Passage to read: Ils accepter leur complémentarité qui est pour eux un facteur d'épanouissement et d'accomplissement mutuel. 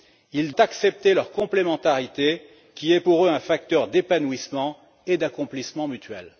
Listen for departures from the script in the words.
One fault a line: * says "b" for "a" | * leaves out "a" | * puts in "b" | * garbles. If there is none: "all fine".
all fine